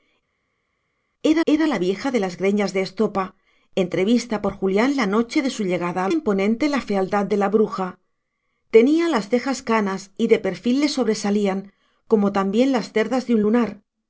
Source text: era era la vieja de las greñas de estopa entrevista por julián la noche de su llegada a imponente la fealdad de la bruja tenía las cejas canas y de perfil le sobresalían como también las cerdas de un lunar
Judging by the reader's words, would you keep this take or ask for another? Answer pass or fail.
pass